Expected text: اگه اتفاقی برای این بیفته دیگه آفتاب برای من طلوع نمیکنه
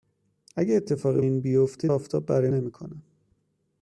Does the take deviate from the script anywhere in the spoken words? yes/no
yes